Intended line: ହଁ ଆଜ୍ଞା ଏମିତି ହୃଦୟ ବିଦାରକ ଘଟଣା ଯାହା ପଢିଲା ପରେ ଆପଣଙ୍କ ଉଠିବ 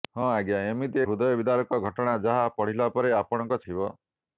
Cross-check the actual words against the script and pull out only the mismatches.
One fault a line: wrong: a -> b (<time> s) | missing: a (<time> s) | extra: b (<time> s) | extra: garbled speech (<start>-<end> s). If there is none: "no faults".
no faults